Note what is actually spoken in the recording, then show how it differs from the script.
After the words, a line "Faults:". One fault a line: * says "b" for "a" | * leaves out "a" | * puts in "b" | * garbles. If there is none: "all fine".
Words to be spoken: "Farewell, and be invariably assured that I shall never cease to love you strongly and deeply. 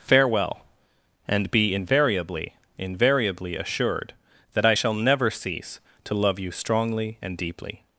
"Farewell, and be invariably invariably assured that I shall never cease to love you strongly and deeply.
Faults:
* puts in "invariably"